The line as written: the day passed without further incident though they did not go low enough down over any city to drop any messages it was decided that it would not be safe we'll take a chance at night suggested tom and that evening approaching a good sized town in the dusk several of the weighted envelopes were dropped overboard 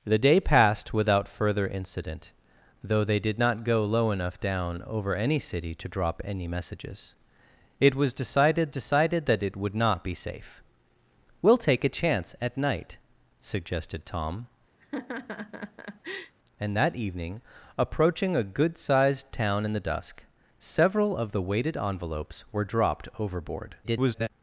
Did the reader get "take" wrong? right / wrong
right